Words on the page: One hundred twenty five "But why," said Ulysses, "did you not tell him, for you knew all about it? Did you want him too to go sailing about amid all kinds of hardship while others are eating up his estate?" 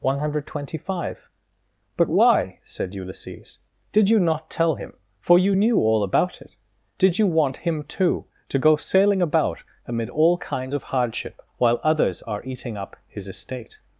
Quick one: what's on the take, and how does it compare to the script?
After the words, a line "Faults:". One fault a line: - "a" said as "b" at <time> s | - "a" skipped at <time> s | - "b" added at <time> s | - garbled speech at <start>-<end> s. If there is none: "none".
One hundred twenty five "But why," said Ulysses, "did you not tell him, for you knew all about it? Did you want him too to go sailing about amid all kinds of hardship while others are eating up his estate?"
Faults:
none